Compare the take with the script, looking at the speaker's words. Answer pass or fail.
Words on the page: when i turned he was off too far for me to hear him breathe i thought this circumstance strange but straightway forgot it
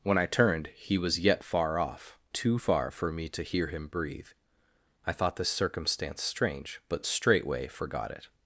fail